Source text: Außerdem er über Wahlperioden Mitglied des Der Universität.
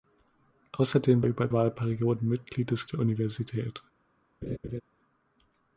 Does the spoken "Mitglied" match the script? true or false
true